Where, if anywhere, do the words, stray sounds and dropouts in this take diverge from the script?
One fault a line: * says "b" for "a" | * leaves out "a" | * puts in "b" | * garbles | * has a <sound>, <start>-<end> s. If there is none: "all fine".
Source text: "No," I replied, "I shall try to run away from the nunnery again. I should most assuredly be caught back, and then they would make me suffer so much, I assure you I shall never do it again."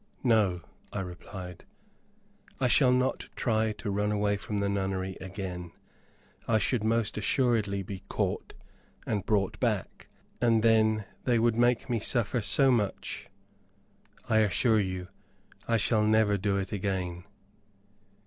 * puts in "not"
* puts in "and brought"